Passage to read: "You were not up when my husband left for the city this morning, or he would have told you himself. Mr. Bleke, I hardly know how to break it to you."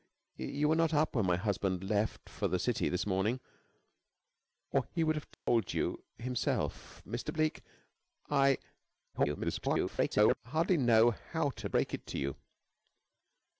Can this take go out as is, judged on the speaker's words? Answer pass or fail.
fail